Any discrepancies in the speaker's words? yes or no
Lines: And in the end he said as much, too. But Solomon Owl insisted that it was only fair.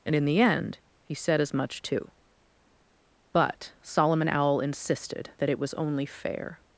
no